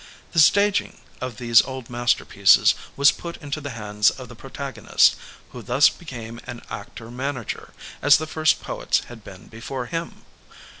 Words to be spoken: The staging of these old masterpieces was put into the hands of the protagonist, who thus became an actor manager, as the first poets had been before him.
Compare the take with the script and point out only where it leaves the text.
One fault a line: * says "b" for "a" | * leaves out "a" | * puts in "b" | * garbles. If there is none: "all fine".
all fine